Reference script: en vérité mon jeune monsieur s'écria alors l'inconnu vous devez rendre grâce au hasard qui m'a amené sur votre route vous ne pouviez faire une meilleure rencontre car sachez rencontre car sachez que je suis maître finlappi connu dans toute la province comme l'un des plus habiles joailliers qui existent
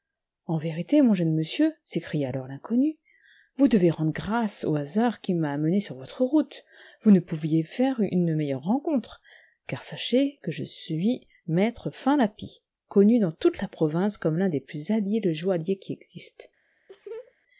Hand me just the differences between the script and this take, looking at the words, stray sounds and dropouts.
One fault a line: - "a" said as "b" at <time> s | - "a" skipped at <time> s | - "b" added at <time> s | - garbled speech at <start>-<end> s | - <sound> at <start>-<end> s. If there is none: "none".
- "rencontre car sachez" skipped at 10.4 s
- laugh at 16.9-17.3 s